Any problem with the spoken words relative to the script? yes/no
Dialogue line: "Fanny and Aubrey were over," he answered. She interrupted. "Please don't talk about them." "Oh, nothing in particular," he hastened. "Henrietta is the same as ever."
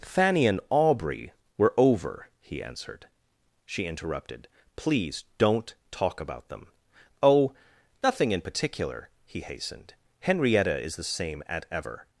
yes